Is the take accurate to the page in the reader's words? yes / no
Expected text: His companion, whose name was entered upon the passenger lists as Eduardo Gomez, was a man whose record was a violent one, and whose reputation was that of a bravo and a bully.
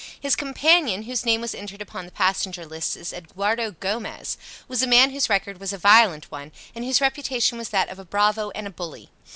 yes